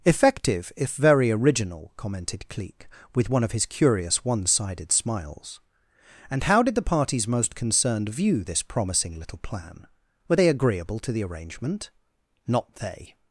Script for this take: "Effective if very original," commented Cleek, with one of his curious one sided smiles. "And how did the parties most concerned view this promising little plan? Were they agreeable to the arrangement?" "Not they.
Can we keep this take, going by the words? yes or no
yes